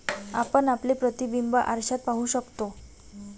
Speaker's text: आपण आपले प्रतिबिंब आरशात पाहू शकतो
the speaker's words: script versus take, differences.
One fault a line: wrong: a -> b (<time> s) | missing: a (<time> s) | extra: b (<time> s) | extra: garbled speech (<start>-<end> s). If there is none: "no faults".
no faults